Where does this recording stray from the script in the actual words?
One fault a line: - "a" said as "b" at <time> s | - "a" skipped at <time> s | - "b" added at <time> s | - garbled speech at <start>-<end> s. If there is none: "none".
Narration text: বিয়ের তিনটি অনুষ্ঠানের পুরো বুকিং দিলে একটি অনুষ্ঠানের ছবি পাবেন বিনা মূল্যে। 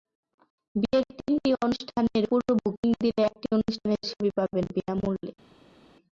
none